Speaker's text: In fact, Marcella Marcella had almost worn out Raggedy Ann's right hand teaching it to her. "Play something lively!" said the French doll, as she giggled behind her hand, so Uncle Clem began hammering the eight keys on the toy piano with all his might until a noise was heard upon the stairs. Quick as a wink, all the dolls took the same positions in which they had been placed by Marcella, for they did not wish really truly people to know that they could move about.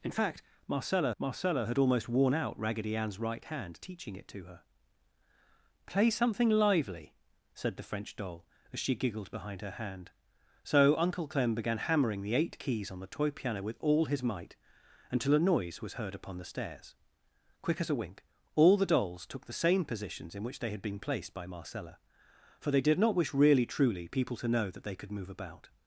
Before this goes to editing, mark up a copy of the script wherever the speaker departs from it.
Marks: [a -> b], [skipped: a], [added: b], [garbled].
In fact, Marcella Marcella had almost worn out Raggedy Ann's right hand teaching it to her. "Play something lively!" said the French doll, as she giggled behind her hand, so Uncle Clem began hammering the eight keys on the toy piano with all his might until a noise was heard upon the stairs. Quick as a wink, all the dolls took the same positions in which they had been placed by Marcella, for they did not wish really truly people to know that they could move about.